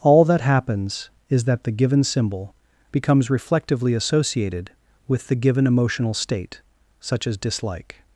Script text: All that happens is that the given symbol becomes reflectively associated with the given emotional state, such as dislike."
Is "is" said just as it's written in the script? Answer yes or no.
yes